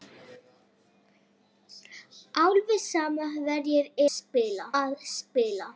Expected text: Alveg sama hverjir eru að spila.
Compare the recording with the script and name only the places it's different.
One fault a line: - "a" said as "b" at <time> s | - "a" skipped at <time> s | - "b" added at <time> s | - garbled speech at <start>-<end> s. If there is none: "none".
- "eru" said as "spila" at 4.1 s